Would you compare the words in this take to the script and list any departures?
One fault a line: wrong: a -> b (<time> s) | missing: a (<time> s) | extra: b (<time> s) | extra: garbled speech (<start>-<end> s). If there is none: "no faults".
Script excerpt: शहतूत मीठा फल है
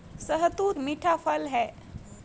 no faults